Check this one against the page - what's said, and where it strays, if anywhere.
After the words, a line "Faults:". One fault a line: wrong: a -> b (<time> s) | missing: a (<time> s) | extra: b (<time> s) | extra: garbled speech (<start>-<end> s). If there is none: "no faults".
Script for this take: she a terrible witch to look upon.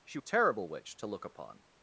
she a terrible witch to look upon.
Faults:
no faults